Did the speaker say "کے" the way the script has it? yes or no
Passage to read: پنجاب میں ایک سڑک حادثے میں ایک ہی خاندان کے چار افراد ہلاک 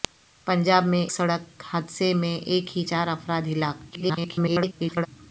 no